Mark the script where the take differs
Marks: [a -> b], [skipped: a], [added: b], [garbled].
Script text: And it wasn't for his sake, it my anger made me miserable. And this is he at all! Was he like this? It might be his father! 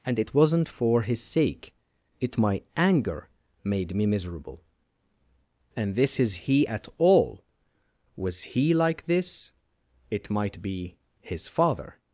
And it wasn't for his sake, it my anger made me miserable. And this is he at all! Was he like this? It might be his father!